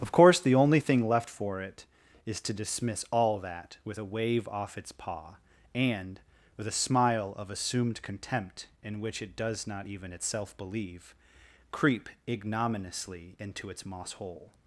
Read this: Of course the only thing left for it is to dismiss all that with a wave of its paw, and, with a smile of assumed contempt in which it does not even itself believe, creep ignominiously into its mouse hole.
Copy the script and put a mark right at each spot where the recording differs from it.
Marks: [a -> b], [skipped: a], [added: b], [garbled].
Of course the only thing left for it is to dismiss all that with a wave [of -> off] its paw, and, with a smile of assumed contempt in which it does not even itself believe, creep ignominiously into its [mouse -> moss] hole.